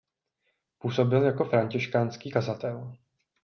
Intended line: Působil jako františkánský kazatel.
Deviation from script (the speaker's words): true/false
false